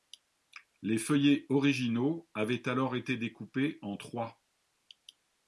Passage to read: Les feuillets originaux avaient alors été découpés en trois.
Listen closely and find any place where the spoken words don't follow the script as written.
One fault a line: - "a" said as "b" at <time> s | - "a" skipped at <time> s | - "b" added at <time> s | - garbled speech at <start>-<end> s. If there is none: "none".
none